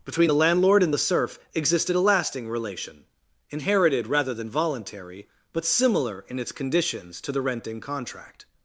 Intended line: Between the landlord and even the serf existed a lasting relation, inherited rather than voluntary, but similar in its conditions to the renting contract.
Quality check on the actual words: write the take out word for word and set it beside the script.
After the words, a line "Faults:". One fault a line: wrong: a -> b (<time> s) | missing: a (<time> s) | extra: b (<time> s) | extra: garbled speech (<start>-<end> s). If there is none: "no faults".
Between the landlord and the serf existed a lasting relation, inherited rather than voluntary, but similar in its conditions to the renting contract.
Faults:
missing: even (0.9 s)